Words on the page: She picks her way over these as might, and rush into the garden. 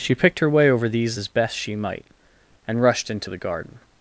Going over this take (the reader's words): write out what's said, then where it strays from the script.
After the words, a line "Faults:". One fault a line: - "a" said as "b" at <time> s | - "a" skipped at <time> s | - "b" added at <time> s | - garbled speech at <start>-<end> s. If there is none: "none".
She picked her way over these as best she might, and rushed into the garden.
Faults:
- "picks" said as "picked" at 0.1 s
- "best she" added at 1.3 s
- "rush" said as "rushed" at 2.8 s